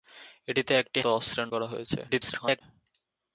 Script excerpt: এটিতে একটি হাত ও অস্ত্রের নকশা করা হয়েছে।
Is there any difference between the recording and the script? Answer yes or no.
yes